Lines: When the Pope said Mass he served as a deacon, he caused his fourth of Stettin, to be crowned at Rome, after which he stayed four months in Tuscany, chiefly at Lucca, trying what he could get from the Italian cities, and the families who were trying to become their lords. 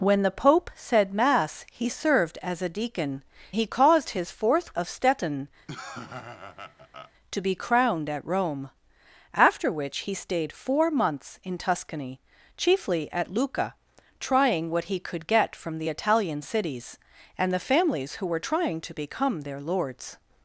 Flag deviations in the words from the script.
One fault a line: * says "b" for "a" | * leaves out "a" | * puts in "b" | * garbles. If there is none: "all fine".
all fine